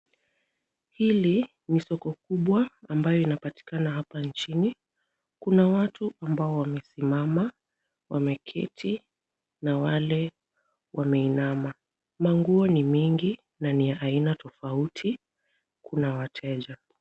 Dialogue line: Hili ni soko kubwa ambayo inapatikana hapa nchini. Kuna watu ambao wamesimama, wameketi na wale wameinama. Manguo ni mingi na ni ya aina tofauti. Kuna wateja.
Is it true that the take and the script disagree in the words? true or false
false